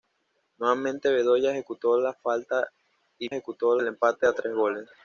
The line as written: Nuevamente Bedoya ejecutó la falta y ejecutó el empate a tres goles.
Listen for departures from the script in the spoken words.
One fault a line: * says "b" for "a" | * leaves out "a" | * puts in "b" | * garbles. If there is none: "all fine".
all fine